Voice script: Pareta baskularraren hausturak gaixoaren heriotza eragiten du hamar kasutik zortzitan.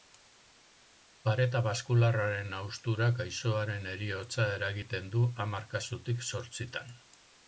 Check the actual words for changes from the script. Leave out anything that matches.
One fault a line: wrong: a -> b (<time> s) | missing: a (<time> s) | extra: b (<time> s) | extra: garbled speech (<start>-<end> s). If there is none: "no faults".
no faults